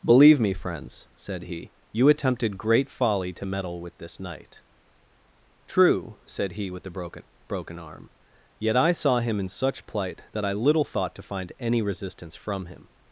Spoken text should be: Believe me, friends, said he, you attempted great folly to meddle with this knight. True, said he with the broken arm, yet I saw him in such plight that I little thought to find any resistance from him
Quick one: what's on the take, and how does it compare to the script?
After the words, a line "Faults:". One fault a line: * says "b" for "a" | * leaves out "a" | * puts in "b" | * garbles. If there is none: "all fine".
Believe me, friends, said he, you attempted great folly to meddle with this knight. True, said he with the broken broken arm, yet I saw him in such plight that I little thought to find any resistance from him
Faults:
* puts in "broken"